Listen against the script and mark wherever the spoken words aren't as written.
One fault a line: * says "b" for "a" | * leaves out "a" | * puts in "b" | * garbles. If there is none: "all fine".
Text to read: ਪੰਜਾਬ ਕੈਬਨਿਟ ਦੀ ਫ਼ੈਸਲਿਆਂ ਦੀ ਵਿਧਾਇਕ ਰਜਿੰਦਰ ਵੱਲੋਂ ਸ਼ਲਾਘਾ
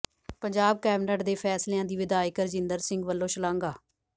* says "ਦੇ" for "ਦੀ"
* puts in "ਸਿੰਘ"